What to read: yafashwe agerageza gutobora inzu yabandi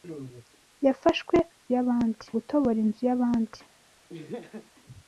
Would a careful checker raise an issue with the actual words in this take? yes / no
yes